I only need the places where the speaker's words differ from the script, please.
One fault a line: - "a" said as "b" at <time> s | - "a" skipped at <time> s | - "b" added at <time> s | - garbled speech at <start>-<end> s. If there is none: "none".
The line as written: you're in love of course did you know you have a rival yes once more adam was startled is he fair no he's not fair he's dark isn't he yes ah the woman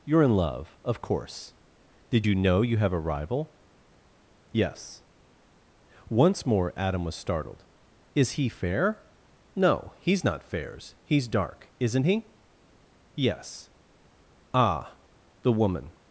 - "fair" said as "fairs" at 10.4 s